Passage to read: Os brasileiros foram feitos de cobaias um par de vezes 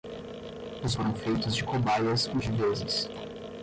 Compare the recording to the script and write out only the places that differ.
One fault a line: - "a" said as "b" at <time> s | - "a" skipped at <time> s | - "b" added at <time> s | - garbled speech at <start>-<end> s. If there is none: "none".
- "brasileiros" skipped at 0.9 s
- "par" skipped at 2.4 s